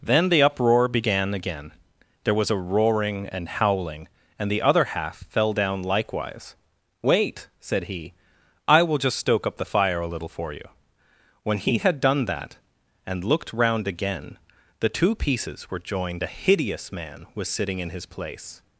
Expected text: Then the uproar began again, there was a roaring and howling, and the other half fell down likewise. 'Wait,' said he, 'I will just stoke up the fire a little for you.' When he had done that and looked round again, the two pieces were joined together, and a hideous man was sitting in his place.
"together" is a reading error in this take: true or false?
true